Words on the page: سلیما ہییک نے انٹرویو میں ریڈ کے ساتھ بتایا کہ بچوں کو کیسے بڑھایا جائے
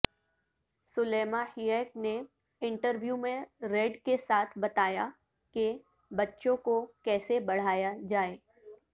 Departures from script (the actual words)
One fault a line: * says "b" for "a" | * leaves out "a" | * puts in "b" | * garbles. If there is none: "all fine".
all fine